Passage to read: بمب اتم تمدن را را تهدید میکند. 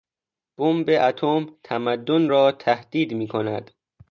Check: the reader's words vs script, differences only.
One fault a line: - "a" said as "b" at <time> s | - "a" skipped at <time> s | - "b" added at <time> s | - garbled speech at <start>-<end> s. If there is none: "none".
- "را" skipped at 2.5 s